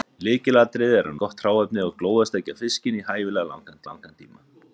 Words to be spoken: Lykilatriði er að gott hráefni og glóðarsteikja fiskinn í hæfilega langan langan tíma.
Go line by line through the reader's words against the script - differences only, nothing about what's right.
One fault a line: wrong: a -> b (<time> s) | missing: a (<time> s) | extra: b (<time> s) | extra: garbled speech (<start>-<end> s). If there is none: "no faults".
no faults